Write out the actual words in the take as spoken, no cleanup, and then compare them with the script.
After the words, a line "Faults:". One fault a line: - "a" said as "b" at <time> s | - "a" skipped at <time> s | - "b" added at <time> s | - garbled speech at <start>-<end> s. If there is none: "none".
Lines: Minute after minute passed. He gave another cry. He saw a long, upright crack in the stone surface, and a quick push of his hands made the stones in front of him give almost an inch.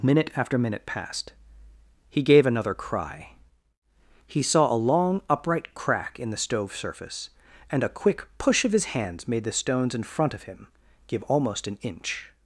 Minute after minute passed. He gave another cry. He saw a long, upright crack in the stove surface, and a quick push of his hands made the stones in front of him give almost an inch.
Faults:
- "stone" said as "stove" at 6.4 s